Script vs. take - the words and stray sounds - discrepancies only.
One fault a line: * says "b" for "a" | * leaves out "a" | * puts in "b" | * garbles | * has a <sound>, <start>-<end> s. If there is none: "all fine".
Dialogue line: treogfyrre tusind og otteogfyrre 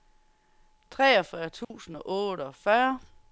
* has a dropout, 1.6-1.7 s